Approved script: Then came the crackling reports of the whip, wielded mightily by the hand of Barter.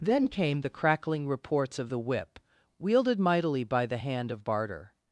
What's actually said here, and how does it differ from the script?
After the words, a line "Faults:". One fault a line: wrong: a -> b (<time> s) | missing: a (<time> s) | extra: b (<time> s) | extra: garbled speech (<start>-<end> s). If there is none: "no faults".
Then came the crackling reports of the whip, wielded mightily by the hand of Barter.
Faults:
no faults